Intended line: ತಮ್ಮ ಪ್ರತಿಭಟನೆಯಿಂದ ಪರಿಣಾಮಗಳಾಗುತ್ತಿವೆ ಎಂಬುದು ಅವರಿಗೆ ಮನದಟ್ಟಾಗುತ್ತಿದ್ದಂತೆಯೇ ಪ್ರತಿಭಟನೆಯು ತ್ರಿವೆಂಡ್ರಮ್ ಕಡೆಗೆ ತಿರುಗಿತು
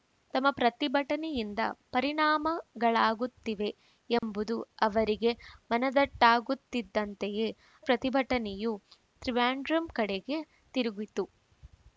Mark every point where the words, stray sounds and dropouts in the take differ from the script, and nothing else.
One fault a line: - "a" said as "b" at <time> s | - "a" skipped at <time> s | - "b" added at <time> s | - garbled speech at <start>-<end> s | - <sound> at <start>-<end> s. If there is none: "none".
- dropout at 4.2-4.2 s